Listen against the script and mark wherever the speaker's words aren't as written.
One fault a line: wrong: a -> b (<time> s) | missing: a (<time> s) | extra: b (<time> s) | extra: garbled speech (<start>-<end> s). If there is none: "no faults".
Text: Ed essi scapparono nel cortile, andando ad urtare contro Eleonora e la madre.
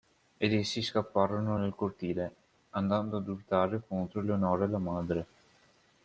no faults